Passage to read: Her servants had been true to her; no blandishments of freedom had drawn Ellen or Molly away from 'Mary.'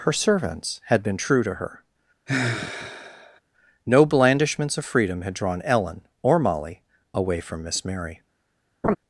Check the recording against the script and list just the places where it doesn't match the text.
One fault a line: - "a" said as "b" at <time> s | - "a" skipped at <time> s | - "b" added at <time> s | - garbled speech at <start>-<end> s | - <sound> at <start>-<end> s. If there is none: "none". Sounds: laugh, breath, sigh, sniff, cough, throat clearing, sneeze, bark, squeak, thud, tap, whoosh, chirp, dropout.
- sigh at 2.3-3.4 s
- "Miss" added at 7.6 s
- laugh at 8.8-9.0 s